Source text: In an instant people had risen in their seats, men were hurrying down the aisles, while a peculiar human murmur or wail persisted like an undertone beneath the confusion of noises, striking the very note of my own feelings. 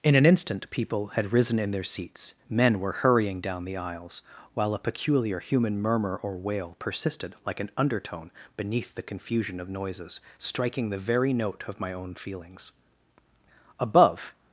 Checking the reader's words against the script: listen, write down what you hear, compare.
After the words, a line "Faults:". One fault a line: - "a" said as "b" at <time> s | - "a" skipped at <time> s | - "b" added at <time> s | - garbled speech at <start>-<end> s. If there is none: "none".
In an instant people had risen in their seats, men were hurrying down the aisles, while a peculiar human murmur or wail persisted like an undertone beneath the confusion of noises, striking the very note of my own feelings. Above
Faults:
- "Above" added at 13.8 s